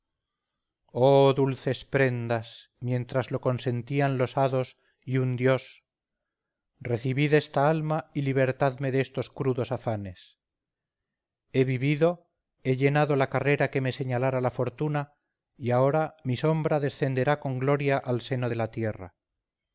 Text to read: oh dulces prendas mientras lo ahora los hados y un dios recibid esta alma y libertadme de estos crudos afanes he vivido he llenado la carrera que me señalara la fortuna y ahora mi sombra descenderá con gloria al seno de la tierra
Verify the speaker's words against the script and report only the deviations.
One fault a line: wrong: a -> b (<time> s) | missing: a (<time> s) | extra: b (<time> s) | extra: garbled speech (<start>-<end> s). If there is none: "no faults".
wrong: ahora -> consentían (3.4 s)